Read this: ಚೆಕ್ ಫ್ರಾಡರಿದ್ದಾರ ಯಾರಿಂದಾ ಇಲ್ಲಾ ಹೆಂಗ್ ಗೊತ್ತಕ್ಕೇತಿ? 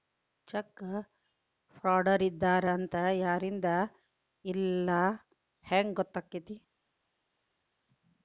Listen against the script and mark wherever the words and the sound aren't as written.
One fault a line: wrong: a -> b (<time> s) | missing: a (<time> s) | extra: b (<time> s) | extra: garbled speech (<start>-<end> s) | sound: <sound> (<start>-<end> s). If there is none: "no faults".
extra: ಅಂತ (2.7 s)